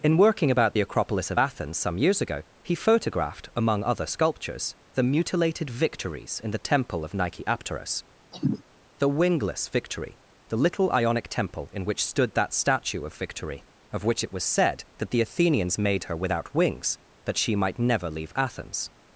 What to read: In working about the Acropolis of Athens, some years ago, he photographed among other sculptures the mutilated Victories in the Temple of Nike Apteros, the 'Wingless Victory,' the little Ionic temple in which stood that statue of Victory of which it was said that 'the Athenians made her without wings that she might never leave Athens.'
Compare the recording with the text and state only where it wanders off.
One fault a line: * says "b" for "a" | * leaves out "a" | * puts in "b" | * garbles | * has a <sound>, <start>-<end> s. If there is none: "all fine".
* has a cough, 8.3-8.6 s